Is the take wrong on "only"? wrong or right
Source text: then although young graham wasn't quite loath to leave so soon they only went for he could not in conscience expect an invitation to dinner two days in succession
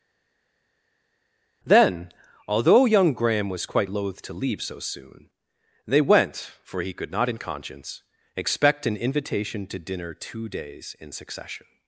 wrong